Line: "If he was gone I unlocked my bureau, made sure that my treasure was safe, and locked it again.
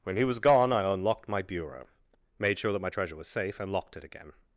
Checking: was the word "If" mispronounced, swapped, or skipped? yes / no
yes